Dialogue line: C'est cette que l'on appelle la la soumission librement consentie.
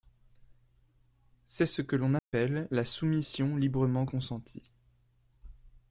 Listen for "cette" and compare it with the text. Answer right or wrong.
wrong